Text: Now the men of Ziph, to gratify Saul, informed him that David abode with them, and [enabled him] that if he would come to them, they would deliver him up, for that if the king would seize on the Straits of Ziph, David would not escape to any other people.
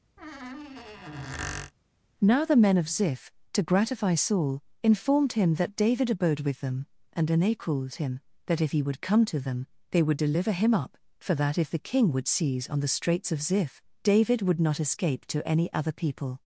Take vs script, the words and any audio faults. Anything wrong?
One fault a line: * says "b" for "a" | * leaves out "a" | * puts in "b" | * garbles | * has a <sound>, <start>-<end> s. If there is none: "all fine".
* has a squeak, 0.2-1.7 s